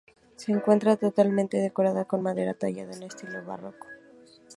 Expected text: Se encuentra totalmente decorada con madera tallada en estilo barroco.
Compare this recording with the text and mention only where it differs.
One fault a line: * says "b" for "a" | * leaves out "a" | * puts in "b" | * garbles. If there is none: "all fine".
all fine